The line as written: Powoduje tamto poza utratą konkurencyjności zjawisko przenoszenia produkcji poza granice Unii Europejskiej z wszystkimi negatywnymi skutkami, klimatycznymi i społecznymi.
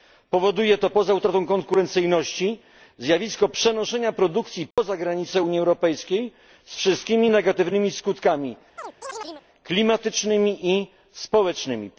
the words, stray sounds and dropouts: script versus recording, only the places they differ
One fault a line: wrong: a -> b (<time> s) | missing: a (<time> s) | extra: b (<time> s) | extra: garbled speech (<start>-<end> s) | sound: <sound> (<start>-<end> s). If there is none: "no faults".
wrong: tamto -> to (0.8 s)
sound: dropout (4.7-4.8 s)
sound: chirp (8.8-9.5 s)